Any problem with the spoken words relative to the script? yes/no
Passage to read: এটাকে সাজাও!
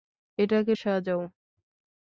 no